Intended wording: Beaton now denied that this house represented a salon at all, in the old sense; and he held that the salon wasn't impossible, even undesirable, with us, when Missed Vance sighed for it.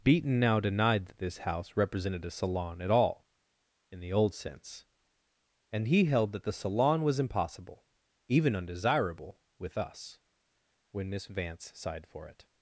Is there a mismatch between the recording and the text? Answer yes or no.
yes